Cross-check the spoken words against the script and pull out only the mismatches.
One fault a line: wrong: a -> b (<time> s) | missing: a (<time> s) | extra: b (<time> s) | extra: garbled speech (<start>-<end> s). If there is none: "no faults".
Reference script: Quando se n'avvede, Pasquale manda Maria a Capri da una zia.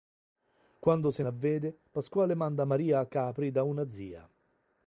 no faults